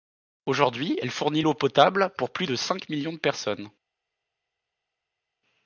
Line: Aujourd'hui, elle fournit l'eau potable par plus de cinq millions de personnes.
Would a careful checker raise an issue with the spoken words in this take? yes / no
yes